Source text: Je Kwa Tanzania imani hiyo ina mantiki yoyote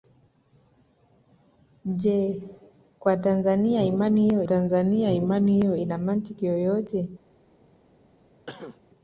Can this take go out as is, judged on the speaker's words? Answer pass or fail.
fail